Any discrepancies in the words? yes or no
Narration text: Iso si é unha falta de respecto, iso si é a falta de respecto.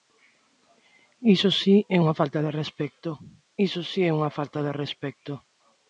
yes